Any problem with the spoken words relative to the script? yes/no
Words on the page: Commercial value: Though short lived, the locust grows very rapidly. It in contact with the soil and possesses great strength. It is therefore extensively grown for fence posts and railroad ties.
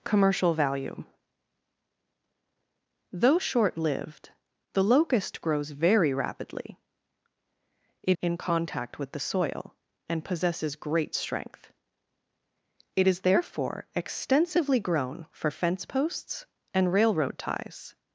no